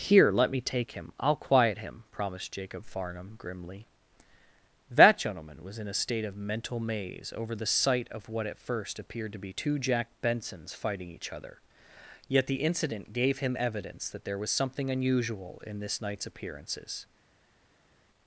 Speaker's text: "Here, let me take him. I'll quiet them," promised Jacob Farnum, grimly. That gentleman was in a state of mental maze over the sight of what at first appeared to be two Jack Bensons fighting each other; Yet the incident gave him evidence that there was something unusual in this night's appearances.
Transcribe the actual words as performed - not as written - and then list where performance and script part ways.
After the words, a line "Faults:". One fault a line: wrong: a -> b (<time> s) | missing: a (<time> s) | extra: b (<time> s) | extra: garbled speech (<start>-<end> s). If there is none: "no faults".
"Here, let me take him. I'll quiet him," promised Jacob Farnum, grimly. That gentleman was in a state of mental maze over the sight of what at first appeared to be two Jack Bensons fighting each other; Yet the incident gave him evidence that there was something unusual in this night's appearances.
Faults:
wrong: them -> him (1.8 s)